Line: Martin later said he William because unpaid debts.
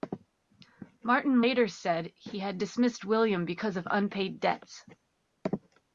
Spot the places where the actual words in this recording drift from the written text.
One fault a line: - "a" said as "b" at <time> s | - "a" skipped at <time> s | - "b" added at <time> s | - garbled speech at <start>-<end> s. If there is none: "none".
- "had dismissed" added at 2.4 s
- "of" added at 3.8 s